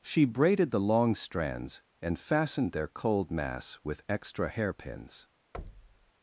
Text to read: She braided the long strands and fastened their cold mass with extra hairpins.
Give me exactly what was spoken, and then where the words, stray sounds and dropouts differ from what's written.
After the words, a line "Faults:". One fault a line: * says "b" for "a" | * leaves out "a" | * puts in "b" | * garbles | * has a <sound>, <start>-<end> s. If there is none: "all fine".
She braided the long strands and fastened their cold mass with extra hairpins.
Faults:
* has a thud, 5.5-6.1 s